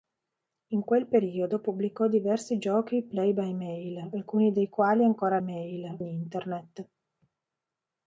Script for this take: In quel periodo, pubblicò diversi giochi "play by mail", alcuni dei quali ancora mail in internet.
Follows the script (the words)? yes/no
yes